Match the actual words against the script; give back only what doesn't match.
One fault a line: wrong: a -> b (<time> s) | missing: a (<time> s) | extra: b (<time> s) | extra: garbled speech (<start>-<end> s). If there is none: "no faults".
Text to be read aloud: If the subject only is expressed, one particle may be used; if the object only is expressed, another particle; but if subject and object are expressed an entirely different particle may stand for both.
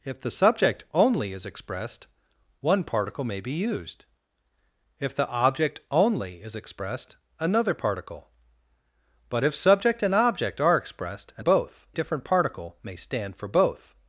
wrong: entirely -> both (11.4 s)